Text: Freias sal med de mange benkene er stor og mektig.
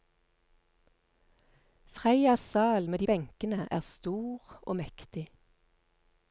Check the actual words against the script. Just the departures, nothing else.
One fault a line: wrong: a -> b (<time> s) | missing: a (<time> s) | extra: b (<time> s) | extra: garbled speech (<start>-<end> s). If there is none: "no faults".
missing: mange (3.1 s)